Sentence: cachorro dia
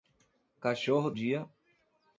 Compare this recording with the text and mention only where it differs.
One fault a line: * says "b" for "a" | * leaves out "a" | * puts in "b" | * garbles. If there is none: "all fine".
all fine